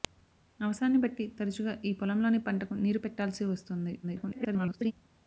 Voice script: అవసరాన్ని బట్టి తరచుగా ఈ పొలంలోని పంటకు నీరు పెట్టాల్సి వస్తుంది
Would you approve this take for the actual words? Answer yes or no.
no